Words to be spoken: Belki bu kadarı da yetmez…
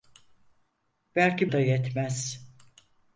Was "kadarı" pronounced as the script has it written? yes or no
no